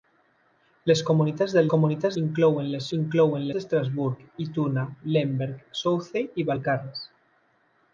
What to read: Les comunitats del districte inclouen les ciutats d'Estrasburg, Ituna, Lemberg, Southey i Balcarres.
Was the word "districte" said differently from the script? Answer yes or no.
yes